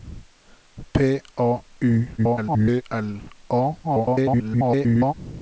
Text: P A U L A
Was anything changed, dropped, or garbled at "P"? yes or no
no